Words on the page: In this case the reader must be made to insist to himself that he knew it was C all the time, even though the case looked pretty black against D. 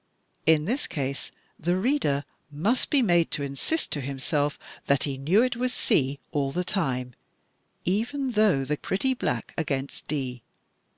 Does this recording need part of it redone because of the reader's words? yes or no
yes